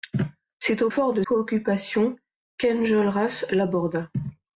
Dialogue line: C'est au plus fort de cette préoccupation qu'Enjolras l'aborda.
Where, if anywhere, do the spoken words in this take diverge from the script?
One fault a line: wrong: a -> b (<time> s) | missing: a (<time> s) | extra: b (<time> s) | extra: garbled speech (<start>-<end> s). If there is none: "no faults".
missing: plus (0.9 s)
missing: cette (1.2 s)